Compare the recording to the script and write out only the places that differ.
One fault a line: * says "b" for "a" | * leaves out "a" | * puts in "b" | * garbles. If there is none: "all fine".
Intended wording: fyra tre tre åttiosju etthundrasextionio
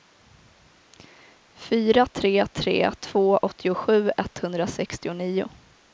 * puts in "två"